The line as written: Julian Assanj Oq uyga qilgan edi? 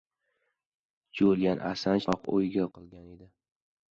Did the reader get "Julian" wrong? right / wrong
right